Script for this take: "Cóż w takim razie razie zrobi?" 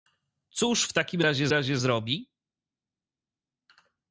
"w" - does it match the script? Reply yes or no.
yes